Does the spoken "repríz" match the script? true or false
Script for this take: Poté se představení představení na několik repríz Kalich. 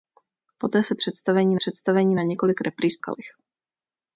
true